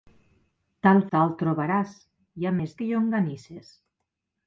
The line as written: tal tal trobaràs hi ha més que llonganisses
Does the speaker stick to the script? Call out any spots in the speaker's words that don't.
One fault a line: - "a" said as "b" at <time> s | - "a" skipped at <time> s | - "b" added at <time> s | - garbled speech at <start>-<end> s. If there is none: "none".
none